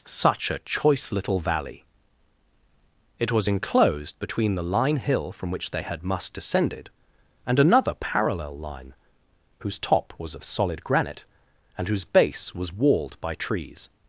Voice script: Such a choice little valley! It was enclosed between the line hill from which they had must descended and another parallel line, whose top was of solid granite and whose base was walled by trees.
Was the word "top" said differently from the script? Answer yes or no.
no